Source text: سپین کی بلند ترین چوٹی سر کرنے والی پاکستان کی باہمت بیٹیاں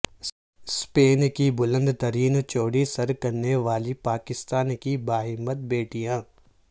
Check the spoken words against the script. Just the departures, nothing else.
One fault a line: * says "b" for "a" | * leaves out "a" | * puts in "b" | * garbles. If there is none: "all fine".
all fine